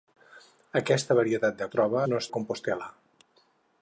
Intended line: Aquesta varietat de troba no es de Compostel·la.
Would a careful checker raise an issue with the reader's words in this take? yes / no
no